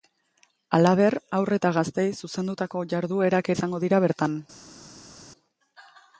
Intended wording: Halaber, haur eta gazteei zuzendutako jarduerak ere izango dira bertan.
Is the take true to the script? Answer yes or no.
no